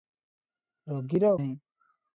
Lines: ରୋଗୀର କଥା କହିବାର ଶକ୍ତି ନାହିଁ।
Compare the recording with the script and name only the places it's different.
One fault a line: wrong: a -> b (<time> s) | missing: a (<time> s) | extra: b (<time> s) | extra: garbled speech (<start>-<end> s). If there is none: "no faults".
missing: କଥା କହିବାର ଶକ୍ତି (1.3 s)